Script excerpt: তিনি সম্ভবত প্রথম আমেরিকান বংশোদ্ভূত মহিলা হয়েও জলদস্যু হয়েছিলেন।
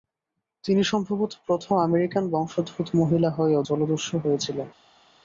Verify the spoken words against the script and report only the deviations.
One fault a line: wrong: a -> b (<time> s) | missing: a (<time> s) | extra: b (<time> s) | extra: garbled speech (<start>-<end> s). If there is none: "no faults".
no faults